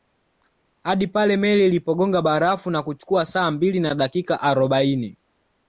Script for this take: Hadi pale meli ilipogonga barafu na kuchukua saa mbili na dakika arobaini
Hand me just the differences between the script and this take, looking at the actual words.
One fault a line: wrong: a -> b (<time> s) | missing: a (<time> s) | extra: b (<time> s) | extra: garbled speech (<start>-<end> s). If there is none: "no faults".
no faults